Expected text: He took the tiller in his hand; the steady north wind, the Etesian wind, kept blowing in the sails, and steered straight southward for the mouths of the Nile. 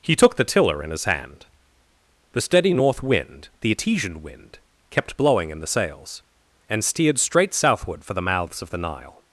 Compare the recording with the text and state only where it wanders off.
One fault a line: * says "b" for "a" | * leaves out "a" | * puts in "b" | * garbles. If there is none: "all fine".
all fine